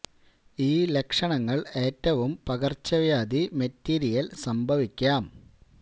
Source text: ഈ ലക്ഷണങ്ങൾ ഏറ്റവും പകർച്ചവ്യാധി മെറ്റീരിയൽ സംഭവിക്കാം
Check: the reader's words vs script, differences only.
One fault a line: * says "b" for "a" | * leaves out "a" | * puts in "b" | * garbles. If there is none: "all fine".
all fine